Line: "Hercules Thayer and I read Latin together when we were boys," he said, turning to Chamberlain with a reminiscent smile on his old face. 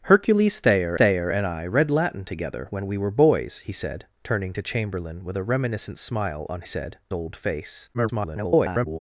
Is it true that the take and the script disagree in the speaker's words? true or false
true